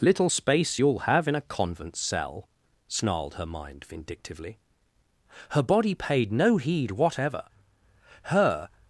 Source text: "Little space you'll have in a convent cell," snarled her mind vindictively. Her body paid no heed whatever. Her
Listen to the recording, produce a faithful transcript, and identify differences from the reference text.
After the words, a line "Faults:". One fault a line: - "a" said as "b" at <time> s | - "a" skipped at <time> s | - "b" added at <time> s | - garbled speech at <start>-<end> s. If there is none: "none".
"Little space you'll have in a convent cell," snarled her mind vindictively. Her body paid no heed whatever. Her
Faults:
none